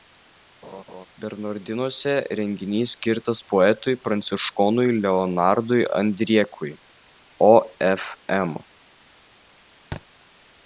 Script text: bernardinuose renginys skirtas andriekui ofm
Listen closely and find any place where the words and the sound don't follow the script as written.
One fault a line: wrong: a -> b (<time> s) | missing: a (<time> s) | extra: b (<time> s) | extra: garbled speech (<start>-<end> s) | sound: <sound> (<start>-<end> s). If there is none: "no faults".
sound: laugh (0.6-1.1 s)
extra: poetui pranciškonui leonardui (3.5 s)
sound: thud (9.9-10.0 s)